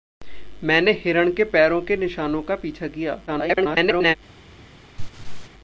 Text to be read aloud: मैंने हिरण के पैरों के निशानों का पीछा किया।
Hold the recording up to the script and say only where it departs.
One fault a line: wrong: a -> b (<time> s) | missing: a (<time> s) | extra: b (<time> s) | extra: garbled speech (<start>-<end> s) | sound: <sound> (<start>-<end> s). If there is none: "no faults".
extra: garbled speech (3.3-4.2 s)
sound: laugh (5.0-5.5 s)